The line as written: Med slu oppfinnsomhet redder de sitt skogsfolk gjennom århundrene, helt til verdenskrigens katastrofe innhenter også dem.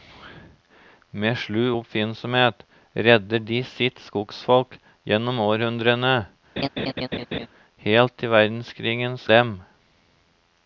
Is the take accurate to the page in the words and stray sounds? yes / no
no